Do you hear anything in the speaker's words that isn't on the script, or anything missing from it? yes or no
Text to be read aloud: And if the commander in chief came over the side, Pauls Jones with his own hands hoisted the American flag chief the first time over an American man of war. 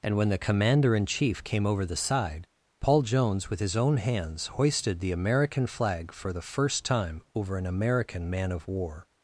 yes